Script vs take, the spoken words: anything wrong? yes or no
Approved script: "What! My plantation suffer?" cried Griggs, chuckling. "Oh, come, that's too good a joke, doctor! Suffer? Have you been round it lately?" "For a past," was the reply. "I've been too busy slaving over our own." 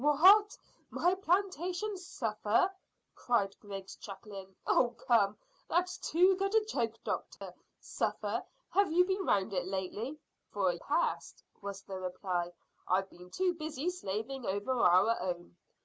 no